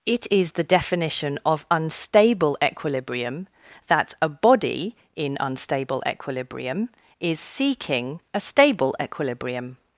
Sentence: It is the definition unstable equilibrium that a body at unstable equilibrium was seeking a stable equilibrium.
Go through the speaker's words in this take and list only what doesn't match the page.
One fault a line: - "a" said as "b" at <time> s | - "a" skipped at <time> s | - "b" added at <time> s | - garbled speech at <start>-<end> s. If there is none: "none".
- "of" added at 1.4 s
- "at" said as "in" at 5.2 s
- "was" said as "is" at 7.2 s